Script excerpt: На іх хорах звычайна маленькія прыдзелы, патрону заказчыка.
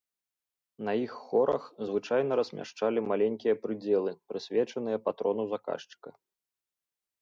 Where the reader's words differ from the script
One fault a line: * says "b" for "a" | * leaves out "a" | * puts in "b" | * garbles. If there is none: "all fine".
* puts in "размяшчалі"
* puts in "прысвечаныя"